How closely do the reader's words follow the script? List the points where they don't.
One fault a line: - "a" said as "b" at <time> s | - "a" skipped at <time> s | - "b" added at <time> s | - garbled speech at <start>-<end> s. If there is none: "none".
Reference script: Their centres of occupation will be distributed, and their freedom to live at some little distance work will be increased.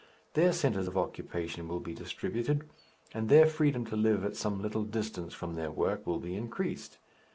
- "from their" added at 5.3 s